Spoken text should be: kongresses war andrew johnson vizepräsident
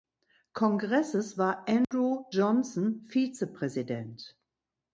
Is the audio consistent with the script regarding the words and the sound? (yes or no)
no